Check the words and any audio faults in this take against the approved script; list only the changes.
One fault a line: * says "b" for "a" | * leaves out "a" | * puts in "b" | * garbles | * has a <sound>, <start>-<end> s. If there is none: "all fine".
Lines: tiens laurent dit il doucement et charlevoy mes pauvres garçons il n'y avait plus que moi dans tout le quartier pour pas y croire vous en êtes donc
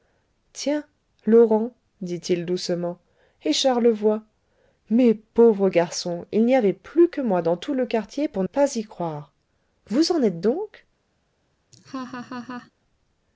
* has a laugh, 11.7-12.7 s